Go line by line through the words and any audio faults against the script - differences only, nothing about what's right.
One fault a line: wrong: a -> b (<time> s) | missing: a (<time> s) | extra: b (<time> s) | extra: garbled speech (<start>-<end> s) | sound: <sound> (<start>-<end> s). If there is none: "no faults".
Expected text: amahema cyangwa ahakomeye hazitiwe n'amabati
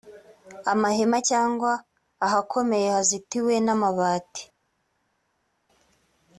no faults